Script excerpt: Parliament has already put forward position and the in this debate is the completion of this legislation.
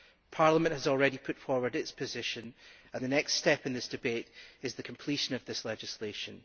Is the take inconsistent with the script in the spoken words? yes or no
yes